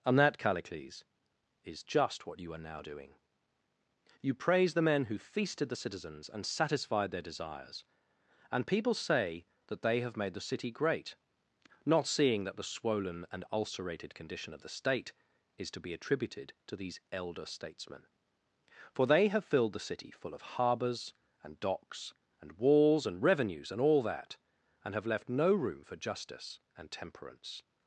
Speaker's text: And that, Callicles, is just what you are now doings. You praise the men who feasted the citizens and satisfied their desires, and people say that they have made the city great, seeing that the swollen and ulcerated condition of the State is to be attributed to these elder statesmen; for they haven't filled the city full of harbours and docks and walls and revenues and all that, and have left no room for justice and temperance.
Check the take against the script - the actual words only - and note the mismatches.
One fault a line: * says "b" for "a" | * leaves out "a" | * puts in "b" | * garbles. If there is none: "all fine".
* says "doing" for "doings"
* puts in "not"
* says "have" for "haven't"